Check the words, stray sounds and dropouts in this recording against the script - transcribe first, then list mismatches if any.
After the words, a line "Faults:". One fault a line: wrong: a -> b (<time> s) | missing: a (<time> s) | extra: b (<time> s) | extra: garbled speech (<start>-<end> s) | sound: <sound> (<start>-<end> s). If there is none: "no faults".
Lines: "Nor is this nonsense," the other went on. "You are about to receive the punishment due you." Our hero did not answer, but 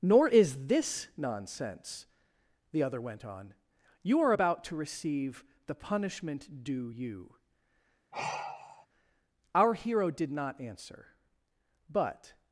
"Nor is this nonsense," the other went on. "You are about to receive the punishment due you." Our hero did not answer, but
Faults:
sound: sigh (8.1-8.9 s)